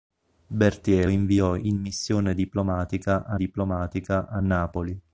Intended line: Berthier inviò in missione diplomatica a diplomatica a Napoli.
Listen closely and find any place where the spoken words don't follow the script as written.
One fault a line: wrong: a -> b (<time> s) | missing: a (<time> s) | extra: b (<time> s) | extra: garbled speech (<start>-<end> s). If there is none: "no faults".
no faults